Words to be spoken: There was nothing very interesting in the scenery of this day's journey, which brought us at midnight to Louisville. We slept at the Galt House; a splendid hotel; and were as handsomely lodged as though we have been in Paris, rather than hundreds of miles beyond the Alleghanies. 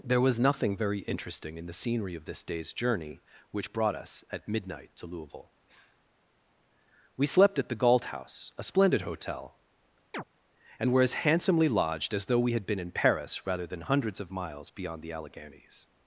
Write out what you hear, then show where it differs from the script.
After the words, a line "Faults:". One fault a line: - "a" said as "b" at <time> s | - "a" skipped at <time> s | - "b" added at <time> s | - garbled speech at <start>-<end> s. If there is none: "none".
There was nothing very interesting in the scenery of this day's journey, which brought us at midnight to Louisville. We slept at the Galt House; a splendid hotel; and were as handsomely lodged as though we had been in Paris, rather than hundreds of miles beyond the Alleghanies.
Faults:
- "have" said as "had" at 12.5 s